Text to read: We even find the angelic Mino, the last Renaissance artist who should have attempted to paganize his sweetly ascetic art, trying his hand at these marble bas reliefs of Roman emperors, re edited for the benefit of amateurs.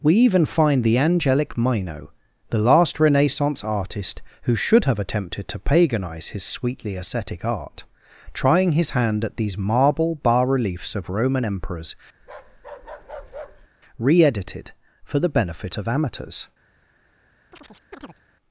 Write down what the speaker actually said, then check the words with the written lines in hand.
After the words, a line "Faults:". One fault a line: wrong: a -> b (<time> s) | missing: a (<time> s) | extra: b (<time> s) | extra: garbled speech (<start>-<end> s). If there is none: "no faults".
We even find the angelic Mino, the last Renaissance artist who should have attempted to paganize his sweetly ascetic art, trying his hand at these marble bas reliefs of Roman emperors, re edited for the benefit of amateurs.
Faults:
no faults